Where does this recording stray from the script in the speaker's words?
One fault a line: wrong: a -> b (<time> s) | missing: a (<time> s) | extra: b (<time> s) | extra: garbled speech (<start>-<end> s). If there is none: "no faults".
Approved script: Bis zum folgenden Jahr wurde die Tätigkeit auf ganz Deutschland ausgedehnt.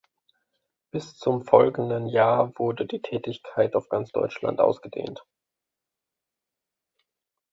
no faults